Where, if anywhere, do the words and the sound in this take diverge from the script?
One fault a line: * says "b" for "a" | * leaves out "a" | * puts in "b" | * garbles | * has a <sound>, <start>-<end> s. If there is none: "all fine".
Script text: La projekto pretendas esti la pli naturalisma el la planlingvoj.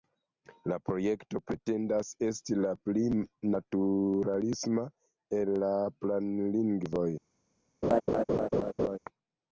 * has a laugh, 7.8-9.0 s